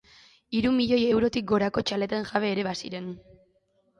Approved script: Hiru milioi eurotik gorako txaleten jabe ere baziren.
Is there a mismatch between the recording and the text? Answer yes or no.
no